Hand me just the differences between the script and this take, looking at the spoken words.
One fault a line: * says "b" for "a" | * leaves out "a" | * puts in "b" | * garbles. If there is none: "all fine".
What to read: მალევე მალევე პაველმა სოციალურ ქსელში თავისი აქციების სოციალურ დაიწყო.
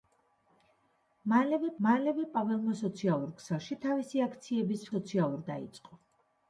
all fine